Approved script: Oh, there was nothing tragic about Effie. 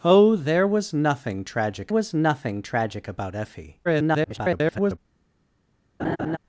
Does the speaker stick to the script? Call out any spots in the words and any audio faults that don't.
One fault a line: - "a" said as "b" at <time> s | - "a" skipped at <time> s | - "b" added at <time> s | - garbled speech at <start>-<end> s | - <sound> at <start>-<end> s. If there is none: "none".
- "was nothing tragic" added at 1.9 s
- garbled speech at 3.8-5.0 s
- laugh at 6.0-6.4 s